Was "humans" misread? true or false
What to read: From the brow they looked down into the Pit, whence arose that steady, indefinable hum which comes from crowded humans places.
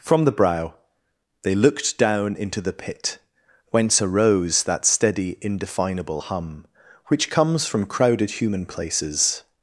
true